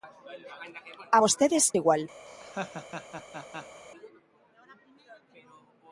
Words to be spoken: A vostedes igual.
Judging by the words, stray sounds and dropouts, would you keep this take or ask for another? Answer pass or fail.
fail